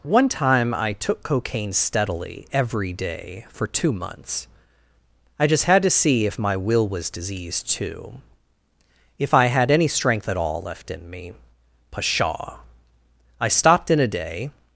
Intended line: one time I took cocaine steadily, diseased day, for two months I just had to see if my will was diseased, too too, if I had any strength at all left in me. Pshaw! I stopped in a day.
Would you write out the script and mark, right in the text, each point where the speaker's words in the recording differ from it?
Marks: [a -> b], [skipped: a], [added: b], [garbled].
one time I took cocaine steadily, [diseased -> every] day, for two months I just had to see if my will was diseased, too [skipped: too,] if I had any strength at all left in me. Pshaw! I stopped in a day.